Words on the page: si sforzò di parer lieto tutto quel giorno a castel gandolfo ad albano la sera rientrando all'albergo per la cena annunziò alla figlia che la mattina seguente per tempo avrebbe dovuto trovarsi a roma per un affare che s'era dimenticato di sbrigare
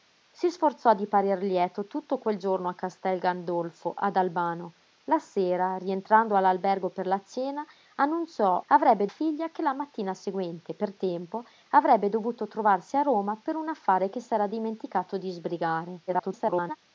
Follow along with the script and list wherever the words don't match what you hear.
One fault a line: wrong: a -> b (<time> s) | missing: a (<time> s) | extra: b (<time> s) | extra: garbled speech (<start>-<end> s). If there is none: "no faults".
wrong: alla -> avrebbe (8.7 s)
extra: garbled speech (16.1-16.8 s)